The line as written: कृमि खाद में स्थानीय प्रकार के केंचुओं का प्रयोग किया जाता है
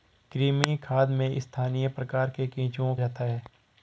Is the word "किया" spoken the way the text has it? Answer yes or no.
no